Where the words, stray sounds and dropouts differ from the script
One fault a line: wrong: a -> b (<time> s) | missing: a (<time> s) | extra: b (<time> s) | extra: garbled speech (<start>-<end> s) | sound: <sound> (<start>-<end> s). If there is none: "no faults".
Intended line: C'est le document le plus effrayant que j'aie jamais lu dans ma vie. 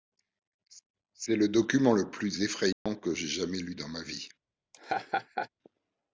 sound: dropout (2.7-2.9 s)
sound: laugh (4.7-5.5 s)